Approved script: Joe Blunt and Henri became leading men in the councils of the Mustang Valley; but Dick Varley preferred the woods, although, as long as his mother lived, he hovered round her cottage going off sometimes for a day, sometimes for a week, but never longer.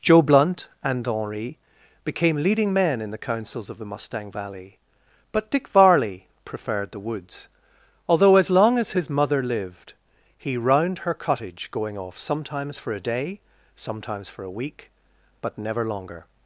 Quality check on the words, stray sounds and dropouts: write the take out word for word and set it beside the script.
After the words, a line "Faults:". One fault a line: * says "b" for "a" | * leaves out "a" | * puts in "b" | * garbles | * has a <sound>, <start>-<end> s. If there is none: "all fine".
Joe Blunt and Henri became leading men in the councils of the Mustang Valley; but Dick Varley preferred the woods, although, as long as his mother lived, he round her cottage going off sometimes for a day, sometimes for a week, but never longer.
Faults:
* leaves out "hovered"